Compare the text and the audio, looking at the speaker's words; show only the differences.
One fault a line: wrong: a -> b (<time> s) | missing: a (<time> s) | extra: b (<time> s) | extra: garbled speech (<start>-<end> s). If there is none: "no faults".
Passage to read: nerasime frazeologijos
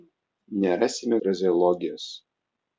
no faults